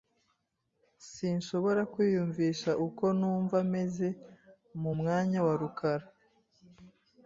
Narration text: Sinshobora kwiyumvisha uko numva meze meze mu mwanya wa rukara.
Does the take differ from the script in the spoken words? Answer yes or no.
yes